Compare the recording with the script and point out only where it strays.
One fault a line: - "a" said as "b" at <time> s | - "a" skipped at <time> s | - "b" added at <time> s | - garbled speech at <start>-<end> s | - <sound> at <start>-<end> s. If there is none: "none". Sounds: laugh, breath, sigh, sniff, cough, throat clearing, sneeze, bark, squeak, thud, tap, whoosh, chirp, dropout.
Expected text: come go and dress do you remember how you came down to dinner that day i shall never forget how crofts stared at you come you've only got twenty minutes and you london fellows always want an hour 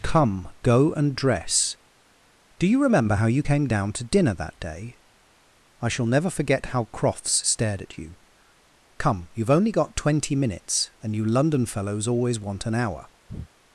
- breath at 13.3-13.5 s